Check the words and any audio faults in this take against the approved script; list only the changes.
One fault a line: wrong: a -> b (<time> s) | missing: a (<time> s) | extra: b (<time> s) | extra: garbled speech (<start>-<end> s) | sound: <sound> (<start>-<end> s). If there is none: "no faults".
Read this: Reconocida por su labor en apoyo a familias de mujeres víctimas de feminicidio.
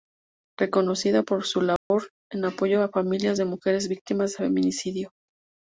sound: dropout (1.8-1.9 s)